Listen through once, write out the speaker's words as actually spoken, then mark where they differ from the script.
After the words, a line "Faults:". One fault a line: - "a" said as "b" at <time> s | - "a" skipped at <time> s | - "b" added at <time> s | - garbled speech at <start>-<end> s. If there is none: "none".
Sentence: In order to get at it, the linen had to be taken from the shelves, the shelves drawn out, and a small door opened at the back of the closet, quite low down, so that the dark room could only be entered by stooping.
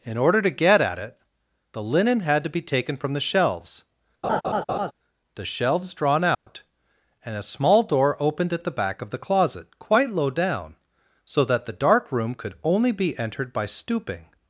In order to get at it, the linen had to be taken from the shelves, the shelves drawn out, and a small door opened at the back of the closet, quite low down, so that the dark room could only be entered by stooping.
Faults:
none